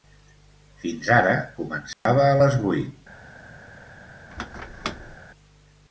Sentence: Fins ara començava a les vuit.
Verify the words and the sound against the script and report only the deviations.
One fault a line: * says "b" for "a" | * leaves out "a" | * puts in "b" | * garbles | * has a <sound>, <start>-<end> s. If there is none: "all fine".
* has a dropout, 1.9-2.1 s
* has a squeak, 4.3-5.2 s